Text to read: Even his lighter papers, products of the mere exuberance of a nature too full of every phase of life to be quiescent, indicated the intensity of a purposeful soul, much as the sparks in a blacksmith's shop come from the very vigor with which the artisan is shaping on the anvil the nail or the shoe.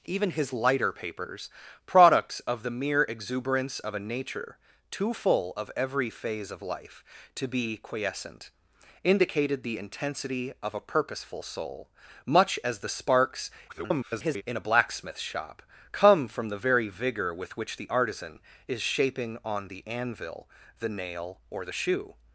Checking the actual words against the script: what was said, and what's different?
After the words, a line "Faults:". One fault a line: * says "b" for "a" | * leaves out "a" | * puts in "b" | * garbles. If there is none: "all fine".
Even his lighter papers, products of the mere exuberance of a nature too full of every phase of life to be quiescent, indicated the intensity of a purposeful soul, much as the sparks [garbled] in a blacksmith's shop come from the very vigor with which the artisan is shaping on the anvil the nail or the shoe.
Faults:
* garbles